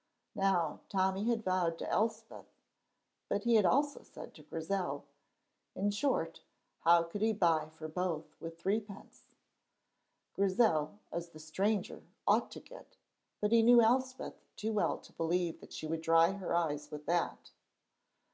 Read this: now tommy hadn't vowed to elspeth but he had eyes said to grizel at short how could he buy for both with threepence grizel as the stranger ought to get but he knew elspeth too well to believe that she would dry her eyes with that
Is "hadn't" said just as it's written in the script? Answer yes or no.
no